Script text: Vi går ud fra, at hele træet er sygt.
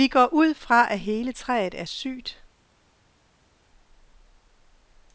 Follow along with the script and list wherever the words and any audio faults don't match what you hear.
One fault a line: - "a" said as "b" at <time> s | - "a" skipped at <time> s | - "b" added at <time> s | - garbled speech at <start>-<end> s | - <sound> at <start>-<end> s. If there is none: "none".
none